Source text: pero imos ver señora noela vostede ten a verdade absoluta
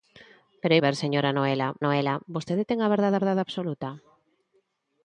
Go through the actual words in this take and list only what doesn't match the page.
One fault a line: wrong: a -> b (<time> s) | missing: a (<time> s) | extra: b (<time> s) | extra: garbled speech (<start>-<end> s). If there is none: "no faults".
missing: imos (0.8 s)
extra: noela (1.8 s)
extra: verdade (3.2 s)